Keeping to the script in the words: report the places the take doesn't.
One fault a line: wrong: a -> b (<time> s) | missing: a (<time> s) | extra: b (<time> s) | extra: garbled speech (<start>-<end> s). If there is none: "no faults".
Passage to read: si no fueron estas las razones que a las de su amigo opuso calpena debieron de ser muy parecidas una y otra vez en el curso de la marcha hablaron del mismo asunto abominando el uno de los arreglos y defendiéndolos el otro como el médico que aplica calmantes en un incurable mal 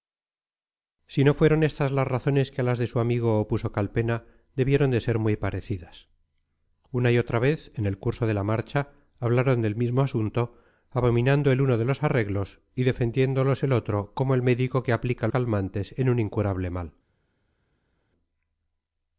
no faults